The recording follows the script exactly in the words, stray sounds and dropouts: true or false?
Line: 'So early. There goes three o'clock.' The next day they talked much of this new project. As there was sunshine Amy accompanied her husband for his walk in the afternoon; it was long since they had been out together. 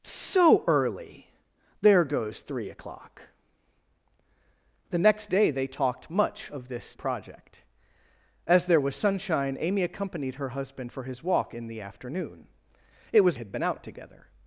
false